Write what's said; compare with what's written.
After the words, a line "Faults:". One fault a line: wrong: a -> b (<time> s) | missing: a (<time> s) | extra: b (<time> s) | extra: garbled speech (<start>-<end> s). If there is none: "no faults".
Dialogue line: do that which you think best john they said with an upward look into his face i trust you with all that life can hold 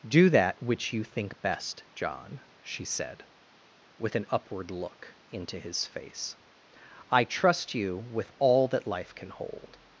do that which you think best john she said with an upward look into his face i trust you with all that life can hold
Faults:
wrong: they -> she (2.6 s)